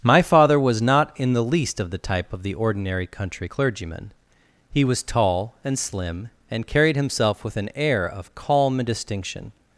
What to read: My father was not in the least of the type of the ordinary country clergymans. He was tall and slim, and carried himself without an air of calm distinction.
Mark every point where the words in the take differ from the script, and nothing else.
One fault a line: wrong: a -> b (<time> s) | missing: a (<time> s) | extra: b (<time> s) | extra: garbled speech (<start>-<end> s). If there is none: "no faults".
wrong: clergymans -> clergyman (3.4 s)
wrong: without -> with (7.4 s)